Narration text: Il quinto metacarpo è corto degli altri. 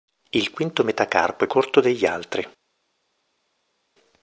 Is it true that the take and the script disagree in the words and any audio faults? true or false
false